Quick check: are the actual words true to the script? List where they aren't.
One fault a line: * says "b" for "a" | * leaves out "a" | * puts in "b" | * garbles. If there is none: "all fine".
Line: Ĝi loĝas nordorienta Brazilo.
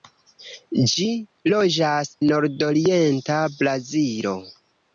all fine